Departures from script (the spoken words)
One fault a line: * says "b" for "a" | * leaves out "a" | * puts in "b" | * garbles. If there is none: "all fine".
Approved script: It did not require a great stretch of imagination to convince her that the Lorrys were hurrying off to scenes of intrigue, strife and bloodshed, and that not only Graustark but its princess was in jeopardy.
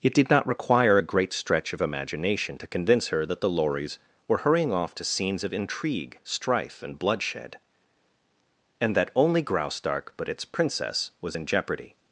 * leaves out "not"